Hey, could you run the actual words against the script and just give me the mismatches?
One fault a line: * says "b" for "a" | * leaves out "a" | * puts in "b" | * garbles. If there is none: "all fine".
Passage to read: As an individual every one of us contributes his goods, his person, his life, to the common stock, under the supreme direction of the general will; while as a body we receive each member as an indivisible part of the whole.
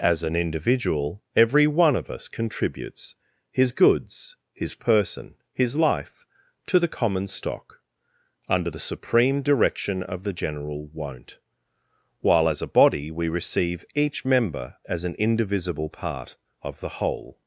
* says "won't" for "will"